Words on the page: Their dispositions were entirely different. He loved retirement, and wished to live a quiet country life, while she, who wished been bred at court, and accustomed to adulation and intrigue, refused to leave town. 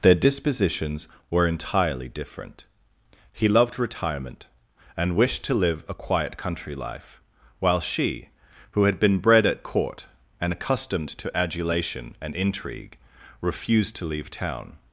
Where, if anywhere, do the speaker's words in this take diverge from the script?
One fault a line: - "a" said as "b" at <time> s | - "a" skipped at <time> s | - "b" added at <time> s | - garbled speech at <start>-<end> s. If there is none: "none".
- "wished" said as "had" at 8.8 s